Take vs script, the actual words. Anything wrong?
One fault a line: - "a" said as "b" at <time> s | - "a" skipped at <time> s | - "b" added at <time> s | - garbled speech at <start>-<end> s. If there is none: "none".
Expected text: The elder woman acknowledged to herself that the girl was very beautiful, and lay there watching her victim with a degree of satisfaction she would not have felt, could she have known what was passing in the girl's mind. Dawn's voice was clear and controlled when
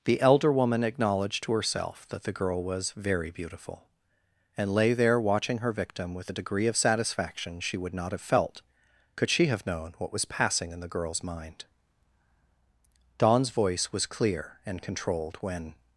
none